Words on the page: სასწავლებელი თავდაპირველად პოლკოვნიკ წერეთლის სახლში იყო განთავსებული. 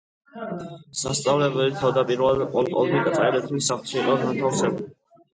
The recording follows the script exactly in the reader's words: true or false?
true